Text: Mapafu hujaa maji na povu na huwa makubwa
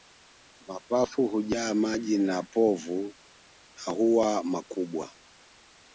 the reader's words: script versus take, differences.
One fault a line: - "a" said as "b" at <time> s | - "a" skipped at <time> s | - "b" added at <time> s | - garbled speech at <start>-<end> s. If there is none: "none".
none